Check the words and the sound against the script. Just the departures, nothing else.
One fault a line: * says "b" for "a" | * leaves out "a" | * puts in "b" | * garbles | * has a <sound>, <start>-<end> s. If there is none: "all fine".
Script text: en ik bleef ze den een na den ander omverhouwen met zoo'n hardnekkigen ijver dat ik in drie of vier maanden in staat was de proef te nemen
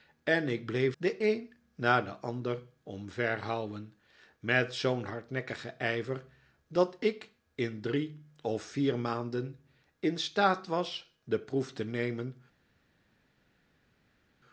* leaves out "ze"